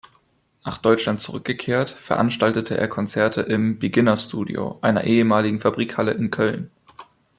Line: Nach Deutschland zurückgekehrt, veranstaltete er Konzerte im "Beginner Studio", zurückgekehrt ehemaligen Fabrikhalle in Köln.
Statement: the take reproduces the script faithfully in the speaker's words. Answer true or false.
false